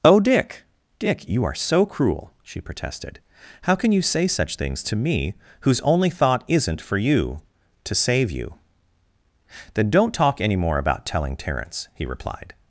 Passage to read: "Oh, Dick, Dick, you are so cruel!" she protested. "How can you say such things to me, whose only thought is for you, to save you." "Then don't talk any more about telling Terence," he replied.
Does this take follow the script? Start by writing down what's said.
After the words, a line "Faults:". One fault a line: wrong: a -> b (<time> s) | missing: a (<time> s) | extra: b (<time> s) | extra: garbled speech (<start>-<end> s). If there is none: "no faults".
"Oh, Dick, Dick, you are so cruel!" she protested. "How can you say such things to me, whose only thought isn't for you, to save you." "Then don't talk any more about telling Terence," he replied.
Faults:
wrong: is -> isn't (6.5 s)